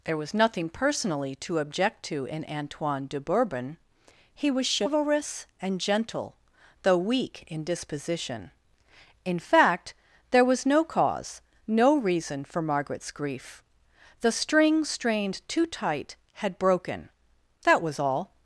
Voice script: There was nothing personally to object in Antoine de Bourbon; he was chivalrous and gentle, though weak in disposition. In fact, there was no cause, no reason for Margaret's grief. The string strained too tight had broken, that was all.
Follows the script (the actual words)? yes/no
no